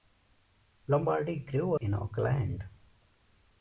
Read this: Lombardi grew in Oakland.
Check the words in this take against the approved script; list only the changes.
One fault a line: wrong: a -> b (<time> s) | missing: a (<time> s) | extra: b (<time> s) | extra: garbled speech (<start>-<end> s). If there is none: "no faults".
no faults